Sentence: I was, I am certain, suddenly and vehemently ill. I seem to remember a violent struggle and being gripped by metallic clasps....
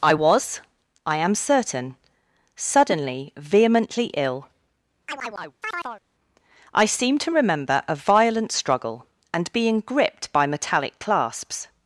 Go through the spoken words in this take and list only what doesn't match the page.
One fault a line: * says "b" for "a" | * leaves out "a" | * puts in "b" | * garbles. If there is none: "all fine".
* leaves out "and"